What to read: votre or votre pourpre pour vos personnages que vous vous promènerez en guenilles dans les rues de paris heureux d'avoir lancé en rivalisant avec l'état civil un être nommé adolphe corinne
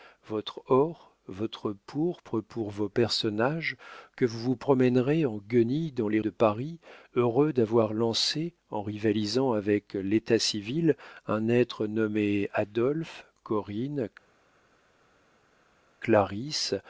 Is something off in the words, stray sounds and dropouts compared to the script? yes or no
yes